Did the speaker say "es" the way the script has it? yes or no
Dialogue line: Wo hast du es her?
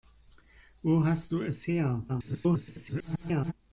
yes